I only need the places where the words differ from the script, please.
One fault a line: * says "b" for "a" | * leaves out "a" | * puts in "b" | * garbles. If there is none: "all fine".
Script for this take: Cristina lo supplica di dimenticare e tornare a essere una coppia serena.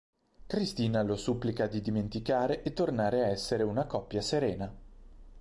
all fine